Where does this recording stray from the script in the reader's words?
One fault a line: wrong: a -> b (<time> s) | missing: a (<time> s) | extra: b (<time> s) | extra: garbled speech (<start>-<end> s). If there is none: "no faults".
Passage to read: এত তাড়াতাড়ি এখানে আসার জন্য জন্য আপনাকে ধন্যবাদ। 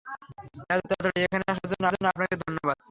no faults